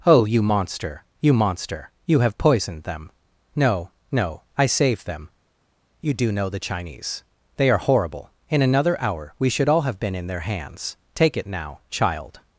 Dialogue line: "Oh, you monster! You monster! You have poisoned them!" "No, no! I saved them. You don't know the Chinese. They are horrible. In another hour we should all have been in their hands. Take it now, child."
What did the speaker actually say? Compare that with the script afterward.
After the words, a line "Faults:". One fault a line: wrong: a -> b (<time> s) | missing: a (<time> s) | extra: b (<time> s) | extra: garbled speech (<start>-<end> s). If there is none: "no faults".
"Oh, you monster! You monster! You have poisoned them!" "No, no! I saved them. You do know the Chinese. They are horrible. In another hour we should all have been in their hands. Take it now, child."
Faults:
wrong: don't -> do (6.1 s)